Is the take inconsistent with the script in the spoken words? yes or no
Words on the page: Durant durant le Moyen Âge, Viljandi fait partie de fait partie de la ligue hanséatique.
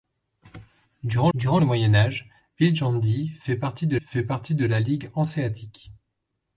no